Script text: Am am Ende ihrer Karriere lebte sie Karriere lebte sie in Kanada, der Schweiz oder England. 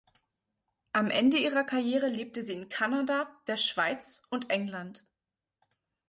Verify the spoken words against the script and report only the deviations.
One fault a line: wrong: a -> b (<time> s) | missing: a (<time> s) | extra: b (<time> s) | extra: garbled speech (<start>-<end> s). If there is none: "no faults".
missing: am (1.1 s)
missing: Karriere lebte sie (2.5 s)
wrong: oder -> und (4.3 s)